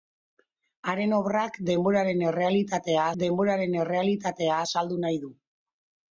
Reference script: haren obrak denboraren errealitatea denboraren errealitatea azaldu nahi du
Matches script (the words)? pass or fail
pass